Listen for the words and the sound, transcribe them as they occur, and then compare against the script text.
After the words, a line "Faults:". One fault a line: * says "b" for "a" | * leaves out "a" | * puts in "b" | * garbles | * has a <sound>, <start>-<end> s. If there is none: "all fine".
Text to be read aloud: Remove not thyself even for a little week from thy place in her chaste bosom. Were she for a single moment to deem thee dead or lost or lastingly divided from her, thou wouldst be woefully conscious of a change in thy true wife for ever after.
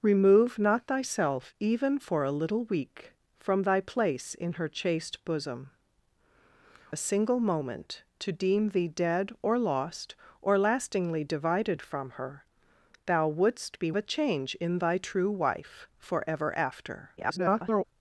Remove not thyself even for a little week from thy place in her chaste bosom. A single moment to deem thee dead or lost or lastingly divided from her, thou wouldst be a change in thy true wife for ever after. [garbled]
Faults:
* leaves out "Were she for"
* leaves out "woefully conscious of"
* garbles